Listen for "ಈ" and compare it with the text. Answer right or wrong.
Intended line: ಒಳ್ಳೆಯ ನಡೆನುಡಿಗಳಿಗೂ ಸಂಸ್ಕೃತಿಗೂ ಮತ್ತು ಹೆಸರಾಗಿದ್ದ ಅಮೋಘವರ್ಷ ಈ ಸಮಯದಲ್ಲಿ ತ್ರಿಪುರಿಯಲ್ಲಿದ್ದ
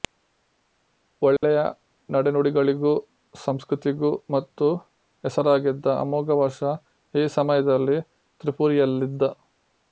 right